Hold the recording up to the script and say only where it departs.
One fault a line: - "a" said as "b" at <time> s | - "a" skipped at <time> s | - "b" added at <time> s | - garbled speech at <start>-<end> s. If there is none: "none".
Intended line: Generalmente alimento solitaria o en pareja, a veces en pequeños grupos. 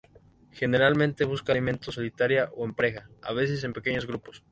- "busca" added at 1.2 s